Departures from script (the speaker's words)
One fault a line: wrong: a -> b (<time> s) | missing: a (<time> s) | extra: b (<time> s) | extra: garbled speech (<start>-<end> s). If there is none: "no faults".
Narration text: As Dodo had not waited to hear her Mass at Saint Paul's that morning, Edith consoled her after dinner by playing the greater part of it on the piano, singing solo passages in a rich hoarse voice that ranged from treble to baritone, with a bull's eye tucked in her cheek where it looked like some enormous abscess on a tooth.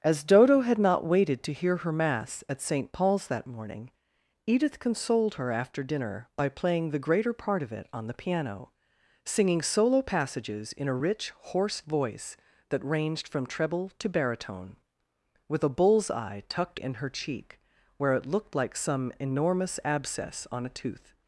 no faults